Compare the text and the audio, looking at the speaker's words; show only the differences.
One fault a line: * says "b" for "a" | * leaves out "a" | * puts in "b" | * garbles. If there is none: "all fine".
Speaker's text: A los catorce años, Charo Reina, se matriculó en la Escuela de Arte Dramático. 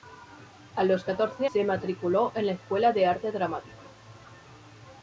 * leaves out "años Charo Reina"